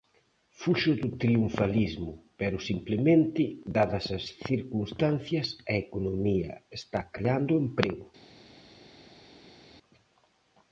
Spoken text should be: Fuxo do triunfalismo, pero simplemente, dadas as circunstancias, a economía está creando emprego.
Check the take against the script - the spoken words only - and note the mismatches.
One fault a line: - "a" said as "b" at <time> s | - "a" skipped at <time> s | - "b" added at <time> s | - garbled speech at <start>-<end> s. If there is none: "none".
none